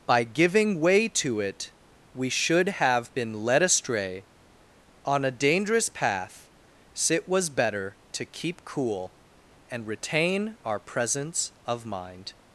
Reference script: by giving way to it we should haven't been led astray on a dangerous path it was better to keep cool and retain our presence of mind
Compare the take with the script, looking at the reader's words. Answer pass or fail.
fail